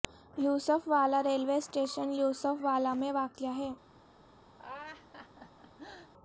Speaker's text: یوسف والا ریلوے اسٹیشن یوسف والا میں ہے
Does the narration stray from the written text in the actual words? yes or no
yes